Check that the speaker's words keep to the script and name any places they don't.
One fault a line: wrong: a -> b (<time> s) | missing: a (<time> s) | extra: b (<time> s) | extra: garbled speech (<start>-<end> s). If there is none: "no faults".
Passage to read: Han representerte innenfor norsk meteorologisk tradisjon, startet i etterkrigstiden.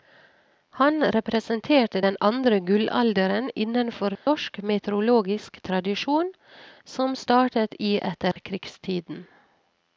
extra: den andre gullalderen (2.0 s)
extra: som (6.8 s)